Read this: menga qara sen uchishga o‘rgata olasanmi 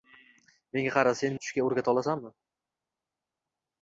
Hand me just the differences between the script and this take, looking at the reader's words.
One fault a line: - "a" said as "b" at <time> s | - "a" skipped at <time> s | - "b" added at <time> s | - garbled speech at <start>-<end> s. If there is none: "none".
none